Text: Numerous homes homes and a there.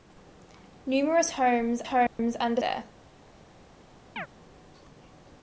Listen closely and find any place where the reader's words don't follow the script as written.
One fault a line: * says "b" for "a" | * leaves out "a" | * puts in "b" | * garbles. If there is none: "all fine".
all fine